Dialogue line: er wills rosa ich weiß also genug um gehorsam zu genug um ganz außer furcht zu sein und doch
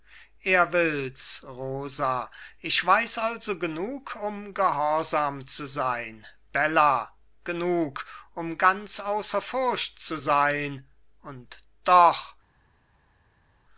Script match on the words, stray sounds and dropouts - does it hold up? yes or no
no